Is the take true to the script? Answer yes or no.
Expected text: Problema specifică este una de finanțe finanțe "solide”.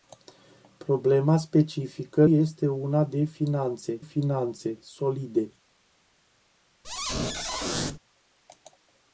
yes